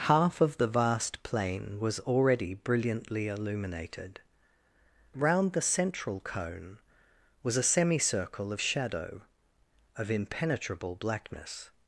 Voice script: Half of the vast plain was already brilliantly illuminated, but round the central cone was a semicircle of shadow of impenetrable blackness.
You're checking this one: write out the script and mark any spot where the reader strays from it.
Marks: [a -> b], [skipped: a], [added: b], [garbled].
Half of the vast plain was already brilliantly illuminated, [skipped: but] round the central cone was a semicircle of shadow of impenetrable blackness.